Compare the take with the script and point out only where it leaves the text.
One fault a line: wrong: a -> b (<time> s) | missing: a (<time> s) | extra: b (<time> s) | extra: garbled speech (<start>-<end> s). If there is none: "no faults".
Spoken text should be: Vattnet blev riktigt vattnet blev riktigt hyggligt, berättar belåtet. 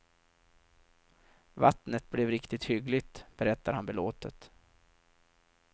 missing: vattnet blev riktigt (2.6 s)
extra: han (3.7 s)